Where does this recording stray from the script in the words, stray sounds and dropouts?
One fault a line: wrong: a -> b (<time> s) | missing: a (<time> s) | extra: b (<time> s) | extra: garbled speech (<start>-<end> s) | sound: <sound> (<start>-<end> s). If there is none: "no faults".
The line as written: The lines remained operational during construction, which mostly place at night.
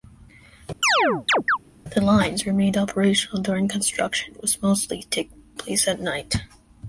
sound: chirp (0.8-1.6 s)